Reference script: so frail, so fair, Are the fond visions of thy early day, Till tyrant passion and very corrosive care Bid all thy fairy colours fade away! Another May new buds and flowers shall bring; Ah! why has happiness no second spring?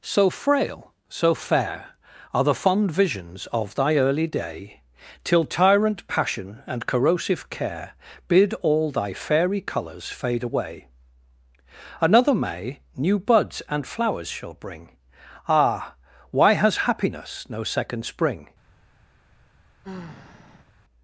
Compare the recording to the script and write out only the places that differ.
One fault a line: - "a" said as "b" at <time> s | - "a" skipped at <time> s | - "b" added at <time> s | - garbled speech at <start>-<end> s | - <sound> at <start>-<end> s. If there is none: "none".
- "very" skipped at 6.9 s
- sigh at 19.8-20.7 s